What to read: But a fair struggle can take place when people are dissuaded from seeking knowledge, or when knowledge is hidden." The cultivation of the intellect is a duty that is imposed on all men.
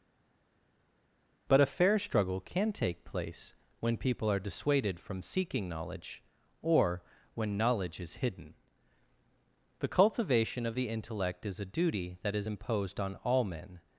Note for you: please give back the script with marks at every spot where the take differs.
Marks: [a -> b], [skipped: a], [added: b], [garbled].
But a fair struggle can take place when people are dissuaded from seeking knowledge, or when knowledge is hidden." The cultivation of the intellect is a duty that is imposed on all men.